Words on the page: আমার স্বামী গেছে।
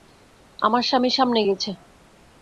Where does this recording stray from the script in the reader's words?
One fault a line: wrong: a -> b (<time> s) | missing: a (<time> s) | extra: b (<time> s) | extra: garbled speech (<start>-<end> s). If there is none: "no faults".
extra: সামনে (1.1 s)